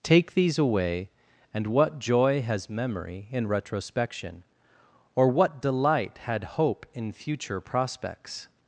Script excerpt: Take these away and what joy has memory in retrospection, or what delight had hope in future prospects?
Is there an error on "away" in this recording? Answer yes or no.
no